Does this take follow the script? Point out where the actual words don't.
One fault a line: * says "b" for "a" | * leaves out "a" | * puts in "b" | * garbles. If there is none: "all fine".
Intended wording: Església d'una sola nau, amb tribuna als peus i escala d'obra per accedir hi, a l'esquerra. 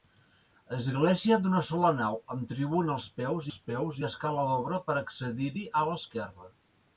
* puts in "als peus"